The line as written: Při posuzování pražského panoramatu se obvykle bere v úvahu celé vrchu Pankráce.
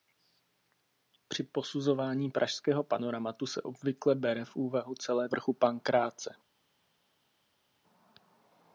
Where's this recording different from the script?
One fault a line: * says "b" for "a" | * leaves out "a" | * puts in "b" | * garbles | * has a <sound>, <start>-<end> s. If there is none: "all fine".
all fine